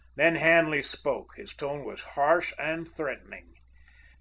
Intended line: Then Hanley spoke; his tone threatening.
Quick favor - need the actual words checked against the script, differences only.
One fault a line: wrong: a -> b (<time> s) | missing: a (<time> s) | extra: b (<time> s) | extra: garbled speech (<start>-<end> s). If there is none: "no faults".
extra: was harsh and (1.8 s)